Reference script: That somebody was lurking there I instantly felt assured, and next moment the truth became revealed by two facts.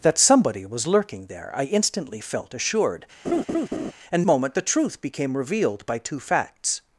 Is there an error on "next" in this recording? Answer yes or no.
yes